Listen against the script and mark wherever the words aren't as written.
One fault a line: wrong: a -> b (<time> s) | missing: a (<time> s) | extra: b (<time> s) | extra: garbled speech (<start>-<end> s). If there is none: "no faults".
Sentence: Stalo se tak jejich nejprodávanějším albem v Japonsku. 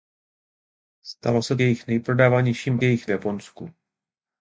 missing: tak (1.6 s)
wrong: albem -> jejich (2.8 s)